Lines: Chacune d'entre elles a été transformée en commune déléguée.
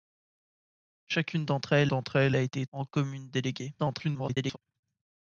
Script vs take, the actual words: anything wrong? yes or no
yes